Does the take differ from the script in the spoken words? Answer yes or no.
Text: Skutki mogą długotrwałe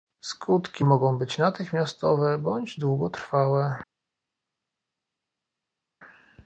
yes